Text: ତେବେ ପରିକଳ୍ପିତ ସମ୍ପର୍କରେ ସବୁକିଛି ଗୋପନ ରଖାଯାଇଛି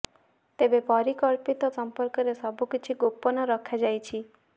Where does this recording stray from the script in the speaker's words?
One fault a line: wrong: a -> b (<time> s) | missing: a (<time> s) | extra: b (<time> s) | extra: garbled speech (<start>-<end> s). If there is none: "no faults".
no faults